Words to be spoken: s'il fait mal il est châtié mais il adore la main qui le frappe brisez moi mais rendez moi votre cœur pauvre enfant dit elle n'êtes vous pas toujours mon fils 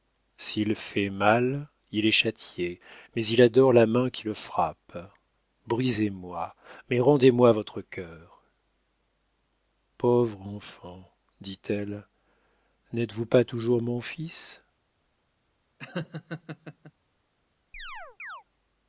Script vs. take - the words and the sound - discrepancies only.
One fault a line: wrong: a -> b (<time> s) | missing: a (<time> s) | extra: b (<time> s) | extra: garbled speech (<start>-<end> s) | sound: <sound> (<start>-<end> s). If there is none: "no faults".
sound: laugh (15.8-16.9 s)
sound: chirp (17.7-18.4 s)